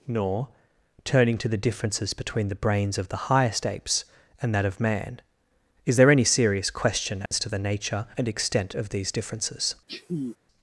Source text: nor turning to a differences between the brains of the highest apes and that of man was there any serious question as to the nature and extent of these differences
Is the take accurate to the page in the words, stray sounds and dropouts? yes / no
no